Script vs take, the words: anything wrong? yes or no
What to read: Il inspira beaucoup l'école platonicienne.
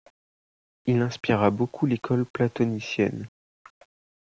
no